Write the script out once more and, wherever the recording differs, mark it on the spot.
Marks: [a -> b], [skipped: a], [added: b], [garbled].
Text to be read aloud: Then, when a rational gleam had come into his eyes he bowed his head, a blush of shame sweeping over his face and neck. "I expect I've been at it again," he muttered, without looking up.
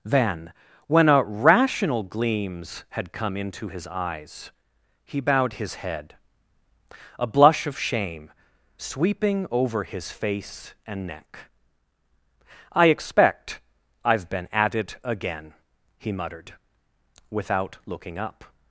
Then, when a rational [gleam -> gleams] had come into his eyes he bowed his head, a blush of shame sweeping over his face and neck. "I expect I've been at it again," he muttered, without looking up.